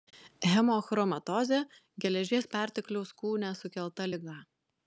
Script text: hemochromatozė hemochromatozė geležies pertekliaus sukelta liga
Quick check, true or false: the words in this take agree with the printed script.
false